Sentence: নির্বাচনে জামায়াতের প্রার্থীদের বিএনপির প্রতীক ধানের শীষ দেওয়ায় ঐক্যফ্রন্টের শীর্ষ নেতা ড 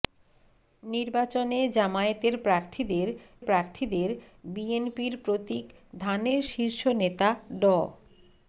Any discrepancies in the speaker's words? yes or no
yes